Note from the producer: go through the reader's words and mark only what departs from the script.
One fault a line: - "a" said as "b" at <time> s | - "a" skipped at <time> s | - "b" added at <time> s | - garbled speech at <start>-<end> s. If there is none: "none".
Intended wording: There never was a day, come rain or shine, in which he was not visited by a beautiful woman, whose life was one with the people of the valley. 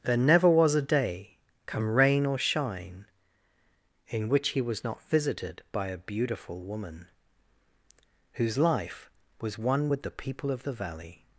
none